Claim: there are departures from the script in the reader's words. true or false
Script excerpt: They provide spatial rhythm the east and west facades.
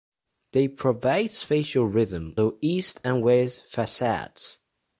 false